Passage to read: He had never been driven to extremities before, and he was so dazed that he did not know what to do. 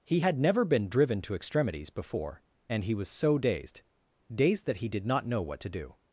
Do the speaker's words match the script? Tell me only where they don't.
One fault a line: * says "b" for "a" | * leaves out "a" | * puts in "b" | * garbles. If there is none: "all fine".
* puts in "dazed"